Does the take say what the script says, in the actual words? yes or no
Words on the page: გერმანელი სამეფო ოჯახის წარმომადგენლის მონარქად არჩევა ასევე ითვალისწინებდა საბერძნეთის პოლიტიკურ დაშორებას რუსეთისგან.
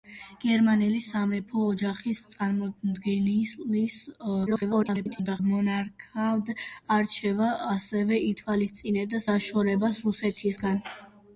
no